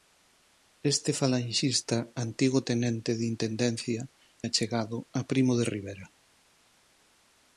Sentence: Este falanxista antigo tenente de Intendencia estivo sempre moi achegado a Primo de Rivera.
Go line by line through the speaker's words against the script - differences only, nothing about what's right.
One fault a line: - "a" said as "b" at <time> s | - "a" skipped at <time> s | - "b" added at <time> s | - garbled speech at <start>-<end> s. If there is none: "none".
- "estivo sempre moi" skipped at 4.0 s